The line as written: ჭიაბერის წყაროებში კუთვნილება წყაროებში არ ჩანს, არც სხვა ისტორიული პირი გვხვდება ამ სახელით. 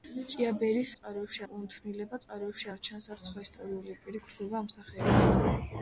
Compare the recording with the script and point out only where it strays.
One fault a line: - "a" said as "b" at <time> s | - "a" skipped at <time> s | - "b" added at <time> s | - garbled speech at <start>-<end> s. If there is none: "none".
none